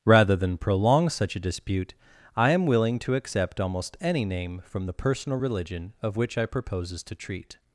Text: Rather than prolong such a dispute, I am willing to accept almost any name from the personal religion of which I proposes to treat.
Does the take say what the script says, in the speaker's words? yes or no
yes